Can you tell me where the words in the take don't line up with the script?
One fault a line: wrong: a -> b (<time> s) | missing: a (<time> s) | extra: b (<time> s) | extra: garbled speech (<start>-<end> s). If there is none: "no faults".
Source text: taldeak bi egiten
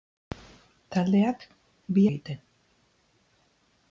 no faults